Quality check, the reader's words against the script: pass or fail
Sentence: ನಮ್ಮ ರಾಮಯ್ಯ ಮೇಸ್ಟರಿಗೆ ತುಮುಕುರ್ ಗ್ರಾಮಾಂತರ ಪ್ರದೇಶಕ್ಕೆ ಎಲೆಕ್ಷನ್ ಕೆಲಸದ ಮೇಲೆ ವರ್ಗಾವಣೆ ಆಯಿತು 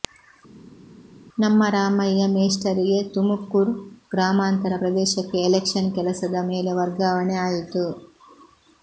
pass